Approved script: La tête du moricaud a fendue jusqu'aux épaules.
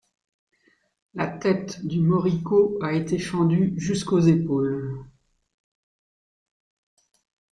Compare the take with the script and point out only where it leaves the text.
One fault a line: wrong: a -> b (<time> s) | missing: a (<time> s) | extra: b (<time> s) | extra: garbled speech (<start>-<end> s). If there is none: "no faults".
extra: été (2.9 s)